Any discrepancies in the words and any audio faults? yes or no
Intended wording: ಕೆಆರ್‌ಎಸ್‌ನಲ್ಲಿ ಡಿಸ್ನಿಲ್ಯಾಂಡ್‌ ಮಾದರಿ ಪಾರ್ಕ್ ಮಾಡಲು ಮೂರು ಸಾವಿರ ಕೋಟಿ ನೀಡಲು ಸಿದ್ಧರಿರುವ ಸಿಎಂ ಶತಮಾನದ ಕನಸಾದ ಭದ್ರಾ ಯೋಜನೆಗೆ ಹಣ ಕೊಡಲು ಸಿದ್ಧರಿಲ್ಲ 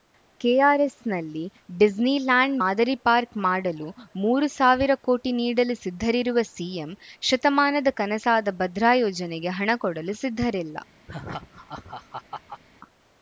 yes